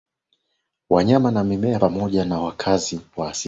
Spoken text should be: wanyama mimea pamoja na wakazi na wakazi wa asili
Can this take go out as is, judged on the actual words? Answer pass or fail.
fail